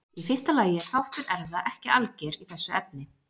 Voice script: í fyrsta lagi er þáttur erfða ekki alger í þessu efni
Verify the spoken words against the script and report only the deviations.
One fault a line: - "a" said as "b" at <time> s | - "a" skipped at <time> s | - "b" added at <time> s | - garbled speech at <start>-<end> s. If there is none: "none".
none